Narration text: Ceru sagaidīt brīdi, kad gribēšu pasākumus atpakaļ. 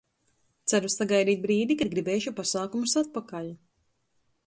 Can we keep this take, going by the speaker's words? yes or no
yes